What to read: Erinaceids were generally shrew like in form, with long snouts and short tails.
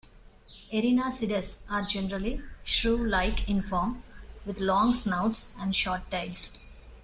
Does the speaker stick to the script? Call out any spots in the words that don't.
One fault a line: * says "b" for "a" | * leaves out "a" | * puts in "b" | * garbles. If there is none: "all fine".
* says "are" for "were"